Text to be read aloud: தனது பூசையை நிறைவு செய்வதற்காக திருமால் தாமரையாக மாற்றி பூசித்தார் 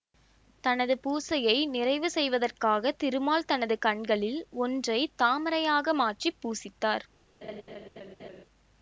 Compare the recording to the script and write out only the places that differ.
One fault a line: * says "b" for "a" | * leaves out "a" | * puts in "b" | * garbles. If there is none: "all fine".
* puts in "தனது கண்களில் ஒன்றை"